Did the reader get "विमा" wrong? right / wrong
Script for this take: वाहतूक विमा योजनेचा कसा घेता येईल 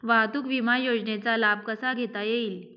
right